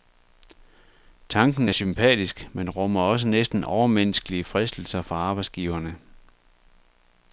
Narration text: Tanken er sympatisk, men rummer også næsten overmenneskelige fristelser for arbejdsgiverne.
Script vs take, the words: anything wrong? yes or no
no